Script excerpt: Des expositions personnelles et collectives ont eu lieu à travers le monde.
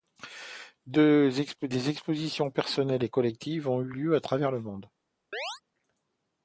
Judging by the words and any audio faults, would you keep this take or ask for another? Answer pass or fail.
fail